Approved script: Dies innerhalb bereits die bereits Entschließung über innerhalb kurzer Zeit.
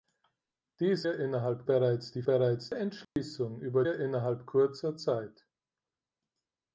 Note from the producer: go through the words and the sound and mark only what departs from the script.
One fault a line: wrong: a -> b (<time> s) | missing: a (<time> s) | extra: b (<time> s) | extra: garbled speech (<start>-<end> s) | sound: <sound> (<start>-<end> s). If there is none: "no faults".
sound: dropout (3.0-3.2 s)